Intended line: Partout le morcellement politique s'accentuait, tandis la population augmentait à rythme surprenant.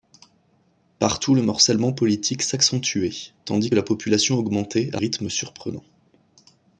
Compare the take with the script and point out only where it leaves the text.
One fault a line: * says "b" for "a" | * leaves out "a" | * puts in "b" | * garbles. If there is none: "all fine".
all fine